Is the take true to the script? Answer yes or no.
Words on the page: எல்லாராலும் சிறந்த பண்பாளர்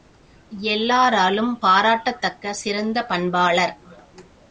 no